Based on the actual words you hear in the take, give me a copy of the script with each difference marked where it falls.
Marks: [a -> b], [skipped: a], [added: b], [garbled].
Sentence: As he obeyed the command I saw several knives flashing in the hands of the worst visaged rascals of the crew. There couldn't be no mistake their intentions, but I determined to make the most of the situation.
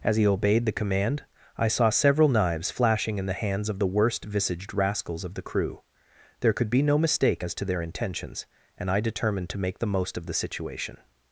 As he obeyed the command I saw several knives flashing in the hands of the worst visaged rascals of the crew. There [couldn't -> could] be no mistake [added: as to] their intentions, [but -> and] I determined to make the most of the situation.